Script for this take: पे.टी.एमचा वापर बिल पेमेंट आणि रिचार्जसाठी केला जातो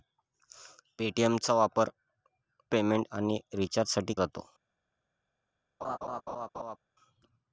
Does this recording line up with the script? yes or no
no